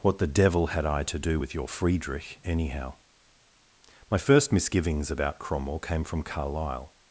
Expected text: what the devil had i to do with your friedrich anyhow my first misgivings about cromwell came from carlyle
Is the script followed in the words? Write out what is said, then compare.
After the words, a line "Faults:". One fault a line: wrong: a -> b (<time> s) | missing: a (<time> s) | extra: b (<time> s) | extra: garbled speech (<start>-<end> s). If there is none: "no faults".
what the devil had i to do with your friedrich anyhow my first misgivings about cromwell came from carlyle
Faults:
no faults